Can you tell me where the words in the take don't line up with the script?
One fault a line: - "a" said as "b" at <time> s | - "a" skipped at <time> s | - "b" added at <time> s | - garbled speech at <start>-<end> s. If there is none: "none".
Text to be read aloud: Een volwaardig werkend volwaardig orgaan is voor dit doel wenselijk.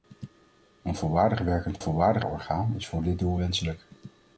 none